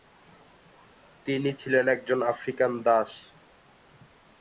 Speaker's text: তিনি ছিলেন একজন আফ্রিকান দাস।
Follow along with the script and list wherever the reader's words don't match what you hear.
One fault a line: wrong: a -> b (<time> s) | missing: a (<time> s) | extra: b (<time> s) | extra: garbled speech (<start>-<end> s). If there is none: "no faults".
no faults